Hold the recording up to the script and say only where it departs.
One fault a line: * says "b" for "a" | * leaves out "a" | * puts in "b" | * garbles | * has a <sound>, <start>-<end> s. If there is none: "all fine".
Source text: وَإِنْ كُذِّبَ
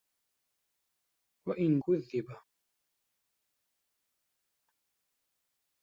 all fine